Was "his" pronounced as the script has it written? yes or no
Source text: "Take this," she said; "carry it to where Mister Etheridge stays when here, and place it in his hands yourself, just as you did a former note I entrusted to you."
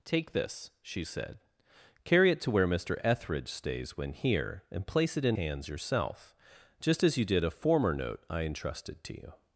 no